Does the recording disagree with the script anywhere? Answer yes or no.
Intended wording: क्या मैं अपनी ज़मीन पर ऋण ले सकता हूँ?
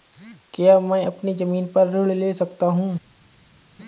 no